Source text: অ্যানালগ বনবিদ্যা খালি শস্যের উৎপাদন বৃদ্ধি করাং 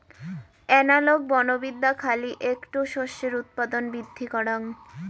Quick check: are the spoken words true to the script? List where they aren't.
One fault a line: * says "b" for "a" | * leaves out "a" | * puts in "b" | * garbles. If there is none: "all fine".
* puts in "এ্যাকটো"